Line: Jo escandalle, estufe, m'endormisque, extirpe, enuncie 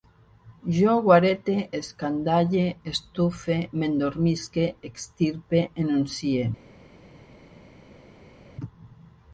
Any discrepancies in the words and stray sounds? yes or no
yes